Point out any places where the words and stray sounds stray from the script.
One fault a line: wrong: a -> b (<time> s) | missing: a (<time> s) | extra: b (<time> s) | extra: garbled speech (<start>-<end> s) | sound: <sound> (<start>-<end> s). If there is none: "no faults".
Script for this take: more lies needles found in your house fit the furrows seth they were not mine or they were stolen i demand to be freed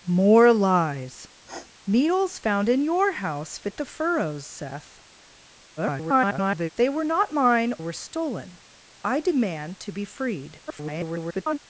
sound: sniff (1.4-1.7 s)
extra: garbled speech (5.8-6.7 s)
missing: or they (7.7 s)
extra: garbled speech (10.7-11.6 s)